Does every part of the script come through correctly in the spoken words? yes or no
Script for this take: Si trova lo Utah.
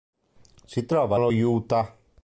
yes